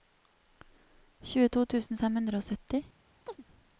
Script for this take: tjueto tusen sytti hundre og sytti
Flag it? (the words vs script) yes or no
yes